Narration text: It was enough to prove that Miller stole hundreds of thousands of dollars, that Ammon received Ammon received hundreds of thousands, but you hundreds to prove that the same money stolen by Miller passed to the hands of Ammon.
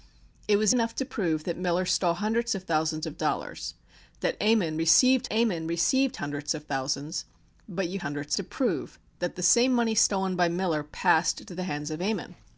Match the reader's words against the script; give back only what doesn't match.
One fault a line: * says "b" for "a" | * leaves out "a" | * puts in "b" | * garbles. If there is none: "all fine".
all fine